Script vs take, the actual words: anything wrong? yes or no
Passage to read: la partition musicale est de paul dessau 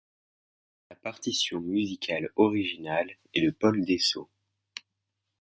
yes